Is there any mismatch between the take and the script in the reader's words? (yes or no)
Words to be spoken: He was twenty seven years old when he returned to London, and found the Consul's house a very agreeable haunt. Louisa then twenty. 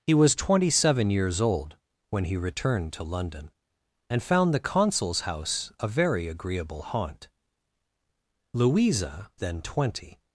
no